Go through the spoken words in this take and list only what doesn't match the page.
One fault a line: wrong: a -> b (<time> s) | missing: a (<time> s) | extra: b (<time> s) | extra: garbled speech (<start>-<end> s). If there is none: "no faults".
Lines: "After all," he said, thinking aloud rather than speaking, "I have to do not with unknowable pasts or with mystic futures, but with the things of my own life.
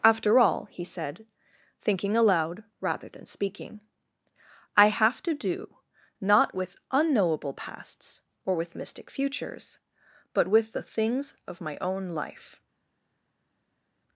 no faults